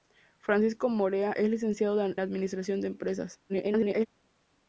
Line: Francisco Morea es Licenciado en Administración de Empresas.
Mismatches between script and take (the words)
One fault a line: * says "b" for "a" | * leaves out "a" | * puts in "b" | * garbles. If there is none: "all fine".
* leaves out "en"
* garbles